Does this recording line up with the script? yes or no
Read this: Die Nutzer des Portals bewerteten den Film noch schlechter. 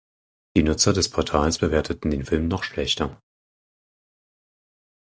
yes